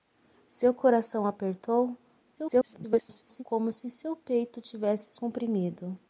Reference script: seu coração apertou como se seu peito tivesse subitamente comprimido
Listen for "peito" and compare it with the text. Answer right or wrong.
right